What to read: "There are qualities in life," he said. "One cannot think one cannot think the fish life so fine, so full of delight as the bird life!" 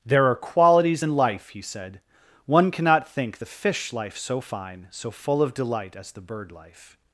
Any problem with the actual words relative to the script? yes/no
yes